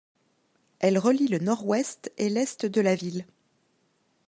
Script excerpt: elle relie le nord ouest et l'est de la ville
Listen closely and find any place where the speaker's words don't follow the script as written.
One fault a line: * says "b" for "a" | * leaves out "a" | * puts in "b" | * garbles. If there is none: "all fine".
all fine